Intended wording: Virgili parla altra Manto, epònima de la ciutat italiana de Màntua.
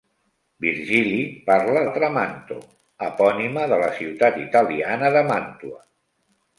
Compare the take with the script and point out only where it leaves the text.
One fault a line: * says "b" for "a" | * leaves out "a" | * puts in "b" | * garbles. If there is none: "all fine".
all fine